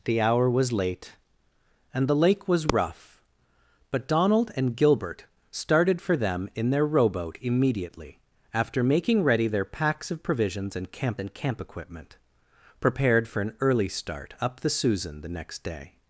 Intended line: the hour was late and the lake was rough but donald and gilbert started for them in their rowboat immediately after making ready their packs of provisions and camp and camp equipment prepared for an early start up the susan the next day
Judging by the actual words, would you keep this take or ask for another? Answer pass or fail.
pass